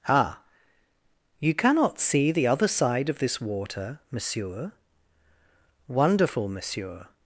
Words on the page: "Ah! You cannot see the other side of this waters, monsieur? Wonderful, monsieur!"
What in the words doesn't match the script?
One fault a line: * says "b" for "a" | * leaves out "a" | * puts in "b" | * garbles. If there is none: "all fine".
* says "water" for "waters"